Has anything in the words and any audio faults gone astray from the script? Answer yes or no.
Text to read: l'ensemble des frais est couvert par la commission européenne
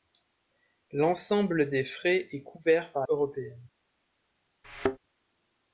yes